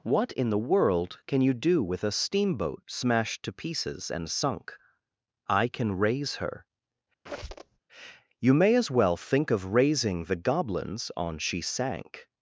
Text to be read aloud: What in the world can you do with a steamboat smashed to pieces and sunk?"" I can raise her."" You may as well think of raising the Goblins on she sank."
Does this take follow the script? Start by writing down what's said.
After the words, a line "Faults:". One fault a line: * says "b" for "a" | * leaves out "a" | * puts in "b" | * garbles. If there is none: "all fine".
What in the world can you do with a steamboat smashed to pieces and sunk?"" I can raise her."" You may as well think of raising the Goblins on she sank."
Faults:
all fine